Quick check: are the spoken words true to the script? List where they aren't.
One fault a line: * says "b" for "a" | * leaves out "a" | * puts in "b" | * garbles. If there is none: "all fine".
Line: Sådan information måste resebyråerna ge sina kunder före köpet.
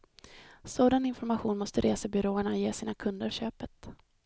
* leaves out "före"